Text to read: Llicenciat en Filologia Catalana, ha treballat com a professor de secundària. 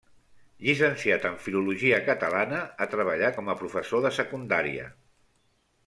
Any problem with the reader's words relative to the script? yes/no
no